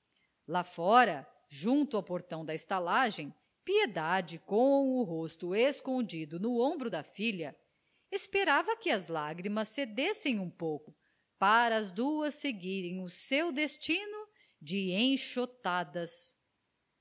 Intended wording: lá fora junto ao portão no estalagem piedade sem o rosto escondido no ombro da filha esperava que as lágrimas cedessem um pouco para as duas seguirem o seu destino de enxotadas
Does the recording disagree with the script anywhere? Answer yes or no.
yes